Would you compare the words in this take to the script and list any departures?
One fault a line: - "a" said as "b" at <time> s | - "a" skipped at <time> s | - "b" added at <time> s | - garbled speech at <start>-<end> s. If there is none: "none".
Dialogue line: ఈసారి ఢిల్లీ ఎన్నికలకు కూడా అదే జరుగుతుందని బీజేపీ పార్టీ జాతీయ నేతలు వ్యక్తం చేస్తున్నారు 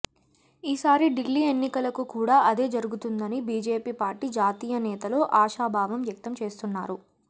- "ఆశాభావం" added at 5.4 s